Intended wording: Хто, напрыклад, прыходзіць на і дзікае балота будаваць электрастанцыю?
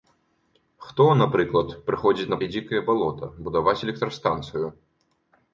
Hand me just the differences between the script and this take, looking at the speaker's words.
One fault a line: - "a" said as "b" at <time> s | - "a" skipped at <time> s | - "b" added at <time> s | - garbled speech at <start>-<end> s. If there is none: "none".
none